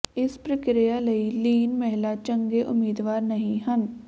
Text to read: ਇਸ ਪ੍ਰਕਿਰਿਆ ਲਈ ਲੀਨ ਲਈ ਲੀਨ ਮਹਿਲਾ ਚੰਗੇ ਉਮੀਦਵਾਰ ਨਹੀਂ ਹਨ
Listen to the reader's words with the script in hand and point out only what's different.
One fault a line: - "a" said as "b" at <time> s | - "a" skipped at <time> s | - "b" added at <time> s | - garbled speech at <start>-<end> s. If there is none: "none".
- "ਲਈ ਲੀਨ" skipped at 1.7 s